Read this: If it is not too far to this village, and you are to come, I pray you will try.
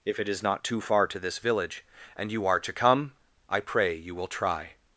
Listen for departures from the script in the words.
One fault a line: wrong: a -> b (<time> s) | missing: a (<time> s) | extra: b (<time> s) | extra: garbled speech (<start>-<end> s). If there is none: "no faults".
no faults